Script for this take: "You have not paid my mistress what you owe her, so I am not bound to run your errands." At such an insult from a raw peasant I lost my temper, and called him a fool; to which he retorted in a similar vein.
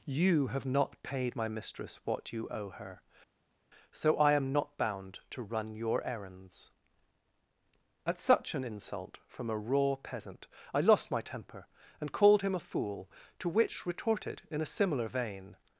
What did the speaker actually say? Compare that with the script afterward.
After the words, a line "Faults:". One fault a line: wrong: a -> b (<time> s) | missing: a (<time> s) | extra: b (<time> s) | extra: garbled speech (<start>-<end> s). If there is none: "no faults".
"You have not paid my mistress what you owe her, so I am not bound to run your errands." At such an insult from a raw peasant I lost my temper, and called him a fool; to which retorted in a similar vein.
Faults:
missing: he (13.9 s)